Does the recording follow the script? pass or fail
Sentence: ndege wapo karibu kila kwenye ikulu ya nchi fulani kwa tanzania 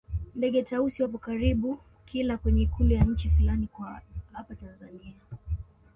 fail